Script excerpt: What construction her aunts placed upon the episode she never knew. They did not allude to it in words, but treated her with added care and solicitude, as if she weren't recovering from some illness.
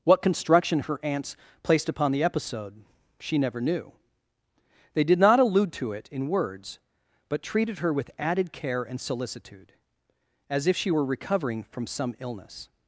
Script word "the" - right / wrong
right